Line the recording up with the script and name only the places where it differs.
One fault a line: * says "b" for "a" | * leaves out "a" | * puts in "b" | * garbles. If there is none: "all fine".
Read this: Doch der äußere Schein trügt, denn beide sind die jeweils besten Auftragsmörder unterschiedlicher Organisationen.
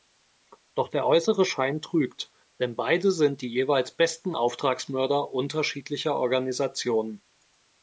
all fine